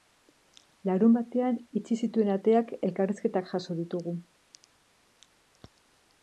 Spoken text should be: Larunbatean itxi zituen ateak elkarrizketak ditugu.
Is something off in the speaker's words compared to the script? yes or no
yes